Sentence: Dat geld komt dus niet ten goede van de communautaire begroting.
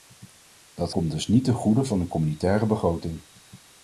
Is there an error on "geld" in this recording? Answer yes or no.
yes